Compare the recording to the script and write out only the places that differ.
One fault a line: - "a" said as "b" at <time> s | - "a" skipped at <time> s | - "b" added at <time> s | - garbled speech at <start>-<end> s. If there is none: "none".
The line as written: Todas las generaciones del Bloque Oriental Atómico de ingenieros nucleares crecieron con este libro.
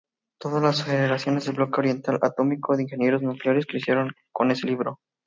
- "este" said as "ese" at 4.5 s